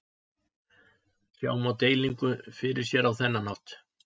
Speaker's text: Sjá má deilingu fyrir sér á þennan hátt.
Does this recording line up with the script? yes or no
yes